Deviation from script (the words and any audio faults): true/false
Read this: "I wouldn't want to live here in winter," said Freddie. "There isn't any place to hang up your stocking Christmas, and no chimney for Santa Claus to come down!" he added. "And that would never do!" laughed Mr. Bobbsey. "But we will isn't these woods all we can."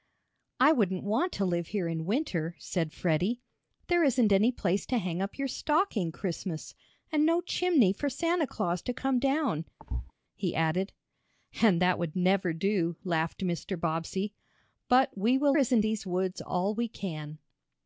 true